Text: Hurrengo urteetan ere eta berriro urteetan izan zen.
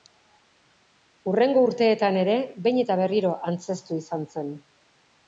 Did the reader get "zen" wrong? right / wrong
right